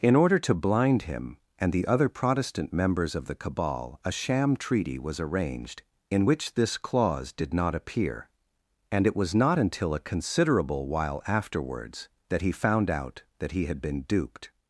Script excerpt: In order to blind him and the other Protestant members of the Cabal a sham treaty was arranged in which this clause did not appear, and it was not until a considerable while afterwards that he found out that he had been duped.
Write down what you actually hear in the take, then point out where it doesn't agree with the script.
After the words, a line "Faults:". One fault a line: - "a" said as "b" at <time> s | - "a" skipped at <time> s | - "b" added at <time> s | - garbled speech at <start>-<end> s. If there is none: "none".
In order to blind him and the other Protestant members of the Cabal a sham treaty was arranged in which this clause did not appear, and it was not until a considerable while afterwards that he found out that he had been duped.
Faults:
none